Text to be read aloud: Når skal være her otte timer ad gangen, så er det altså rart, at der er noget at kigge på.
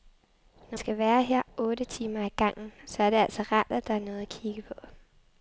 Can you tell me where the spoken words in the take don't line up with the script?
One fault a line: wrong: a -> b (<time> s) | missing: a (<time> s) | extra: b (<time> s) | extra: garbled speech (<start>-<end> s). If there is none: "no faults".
no faults